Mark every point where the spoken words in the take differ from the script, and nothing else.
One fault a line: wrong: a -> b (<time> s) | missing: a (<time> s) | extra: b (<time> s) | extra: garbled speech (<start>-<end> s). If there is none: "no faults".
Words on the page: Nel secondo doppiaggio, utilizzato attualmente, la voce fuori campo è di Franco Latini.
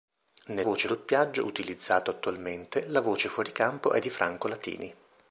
wrong: secondo -> voce (0.6 s)